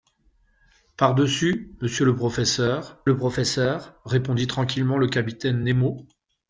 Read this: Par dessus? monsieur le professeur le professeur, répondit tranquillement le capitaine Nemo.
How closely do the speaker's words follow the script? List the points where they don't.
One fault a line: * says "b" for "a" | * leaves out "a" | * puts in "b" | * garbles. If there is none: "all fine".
all fine